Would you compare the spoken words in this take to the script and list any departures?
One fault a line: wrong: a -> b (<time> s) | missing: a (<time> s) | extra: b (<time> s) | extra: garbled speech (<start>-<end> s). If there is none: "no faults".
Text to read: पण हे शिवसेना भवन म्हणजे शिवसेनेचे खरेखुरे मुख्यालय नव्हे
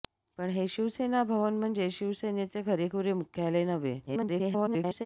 extra: garbled speech (4.1-5.1 s)